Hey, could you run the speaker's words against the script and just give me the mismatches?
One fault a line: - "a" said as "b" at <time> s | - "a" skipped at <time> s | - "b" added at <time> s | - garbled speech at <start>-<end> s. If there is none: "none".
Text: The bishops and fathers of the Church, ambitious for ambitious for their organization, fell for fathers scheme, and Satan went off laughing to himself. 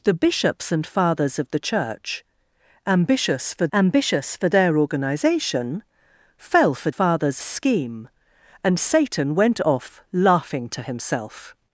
none